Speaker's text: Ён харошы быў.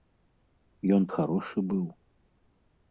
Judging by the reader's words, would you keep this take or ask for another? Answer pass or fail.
pass